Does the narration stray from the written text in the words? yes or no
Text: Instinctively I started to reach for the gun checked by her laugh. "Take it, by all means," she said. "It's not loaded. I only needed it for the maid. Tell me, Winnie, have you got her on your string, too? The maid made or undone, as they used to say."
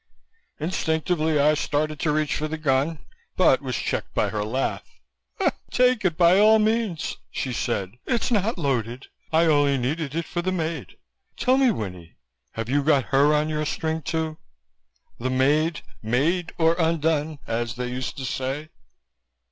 yes